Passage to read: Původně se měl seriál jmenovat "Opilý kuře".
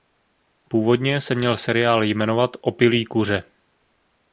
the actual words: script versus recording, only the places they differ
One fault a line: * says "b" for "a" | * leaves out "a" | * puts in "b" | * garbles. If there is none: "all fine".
all fine